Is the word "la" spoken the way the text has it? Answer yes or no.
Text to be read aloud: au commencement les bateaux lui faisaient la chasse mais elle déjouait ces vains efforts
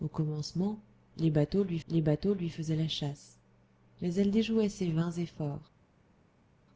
yes